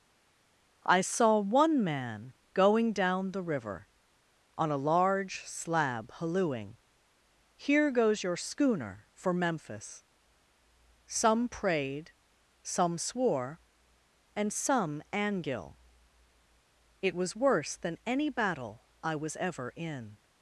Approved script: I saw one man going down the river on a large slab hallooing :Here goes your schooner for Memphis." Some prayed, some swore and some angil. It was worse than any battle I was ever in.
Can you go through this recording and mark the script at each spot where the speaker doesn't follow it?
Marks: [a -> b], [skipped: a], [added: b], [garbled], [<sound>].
I saw one man going down the river on a large slab hallooing :Here goes your schooner for Memphis." Some prayed, some swore and some angil. It was worse than any battle I was ever in.